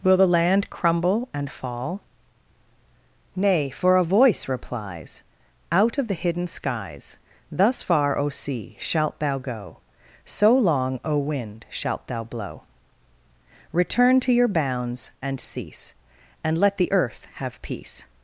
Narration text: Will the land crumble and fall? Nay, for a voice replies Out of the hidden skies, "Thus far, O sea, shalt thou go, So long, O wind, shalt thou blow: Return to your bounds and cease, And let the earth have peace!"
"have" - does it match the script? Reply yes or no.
yes